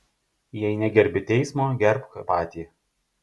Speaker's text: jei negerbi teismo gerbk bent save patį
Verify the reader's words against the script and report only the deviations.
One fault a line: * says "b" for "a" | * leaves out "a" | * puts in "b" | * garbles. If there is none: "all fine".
* leaves out "bent save"